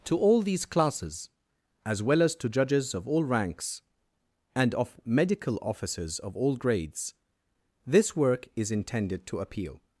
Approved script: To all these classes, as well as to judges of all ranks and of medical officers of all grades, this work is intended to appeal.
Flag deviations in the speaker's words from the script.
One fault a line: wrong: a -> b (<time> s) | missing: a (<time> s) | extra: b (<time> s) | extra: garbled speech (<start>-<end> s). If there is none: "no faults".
no faults